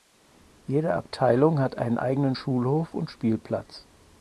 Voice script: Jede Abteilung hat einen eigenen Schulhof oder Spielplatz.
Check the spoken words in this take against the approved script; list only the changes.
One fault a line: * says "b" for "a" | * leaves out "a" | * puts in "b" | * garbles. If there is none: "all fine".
* says "und" for "oder"